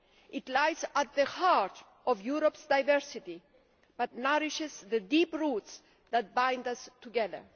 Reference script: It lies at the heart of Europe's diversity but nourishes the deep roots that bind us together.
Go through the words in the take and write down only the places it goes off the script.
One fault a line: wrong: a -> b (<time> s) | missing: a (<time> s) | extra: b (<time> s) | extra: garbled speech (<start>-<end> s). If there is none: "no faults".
no faults